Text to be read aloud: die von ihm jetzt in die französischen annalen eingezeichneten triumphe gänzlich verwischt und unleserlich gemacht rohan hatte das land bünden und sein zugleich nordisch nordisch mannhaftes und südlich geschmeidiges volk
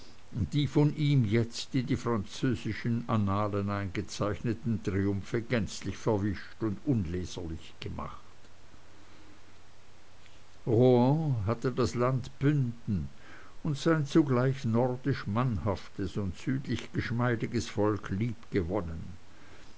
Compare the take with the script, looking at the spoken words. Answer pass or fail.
fail